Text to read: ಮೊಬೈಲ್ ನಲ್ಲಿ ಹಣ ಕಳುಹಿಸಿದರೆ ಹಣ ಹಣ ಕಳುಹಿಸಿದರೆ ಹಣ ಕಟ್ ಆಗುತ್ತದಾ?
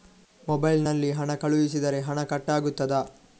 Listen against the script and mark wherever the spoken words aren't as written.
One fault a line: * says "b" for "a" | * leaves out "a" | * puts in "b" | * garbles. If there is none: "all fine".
* leaves out "ಹಣ ಕಳುಹಿಸಿದರೆ ಹಣ"